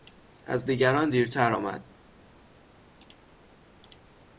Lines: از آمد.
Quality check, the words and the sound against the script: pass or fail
fail